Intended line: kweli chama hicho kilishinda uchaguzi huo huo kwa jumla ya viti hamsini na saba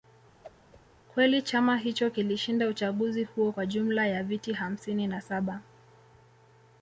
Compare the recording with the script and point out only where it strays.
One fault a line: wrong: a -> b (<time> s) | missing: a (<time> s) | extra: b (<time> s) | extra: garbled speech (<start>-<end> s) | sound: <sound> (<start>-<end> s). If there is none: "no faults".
sound: whoosh (0.4-0.8 s)
missing: huo (3.5 s)